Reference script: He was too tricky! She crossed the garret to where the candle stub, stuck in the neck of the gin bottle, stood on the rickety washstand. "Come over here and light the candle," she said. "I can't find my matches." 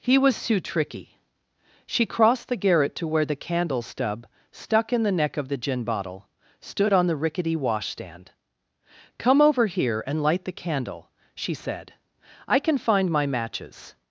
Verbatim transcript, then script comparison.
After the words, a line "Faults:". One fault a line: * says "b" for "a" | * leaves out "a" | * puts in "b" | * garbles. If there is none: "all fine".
He was too tricky! She crossed the garret to where the candle stub, stuck in the neck of the gin bottle, stood on the rickety washstand. "Come over here and light the candle," she said. "I can find my matches."
Faults:
* says "can" for "can't"